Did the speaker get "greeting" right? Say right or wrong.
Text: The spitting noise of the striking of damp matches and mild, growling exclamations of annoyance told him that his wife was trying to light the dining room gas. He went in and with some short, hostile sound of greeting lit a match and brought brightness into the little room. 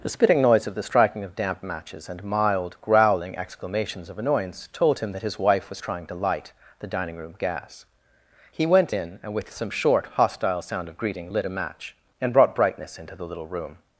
right